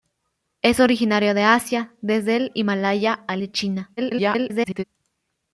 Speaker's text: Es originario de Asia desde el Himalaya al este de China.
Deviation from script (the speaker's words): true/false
true